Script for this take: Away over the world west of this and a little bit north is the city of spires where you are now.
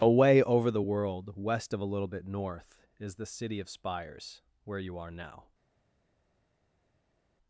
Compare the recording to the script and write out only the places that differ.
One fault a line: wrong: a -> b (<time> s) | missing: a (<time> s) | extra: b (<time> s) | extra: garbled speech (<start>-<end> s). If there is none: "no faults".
missing: this and (1.8 s)